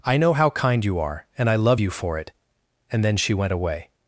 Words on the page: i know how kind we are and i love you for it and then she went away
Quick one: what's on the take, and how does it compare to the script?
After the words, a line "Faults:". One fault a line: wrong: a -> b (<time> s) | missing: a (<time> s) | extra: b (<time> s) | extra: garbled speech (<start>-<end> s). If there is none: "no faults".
i know how kind you are and i love you for it and then she went away
Faults:
wrong: we -> you (0.8 s)